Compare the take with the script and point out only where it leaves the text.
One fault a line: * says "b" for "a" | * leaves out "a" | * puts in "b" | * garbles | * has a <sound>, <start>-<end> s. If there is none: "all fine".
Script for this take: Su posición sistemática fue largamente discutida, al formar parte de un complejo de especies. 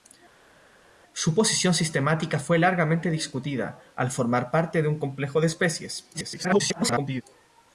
* garbles